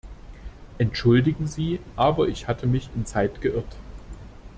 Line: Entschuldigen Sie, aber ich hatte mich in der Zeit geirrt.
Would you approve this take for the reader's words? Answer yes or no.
no